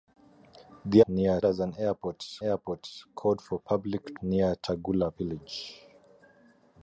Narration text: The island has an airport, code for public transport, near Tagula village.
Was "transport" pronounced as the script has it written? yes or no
no